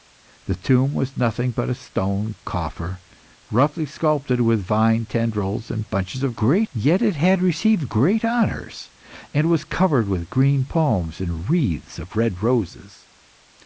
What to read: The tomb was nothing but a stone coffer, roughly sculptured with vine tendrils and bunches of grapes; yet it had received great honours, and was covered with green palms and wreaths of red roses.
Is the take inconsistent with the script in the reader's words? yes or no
yes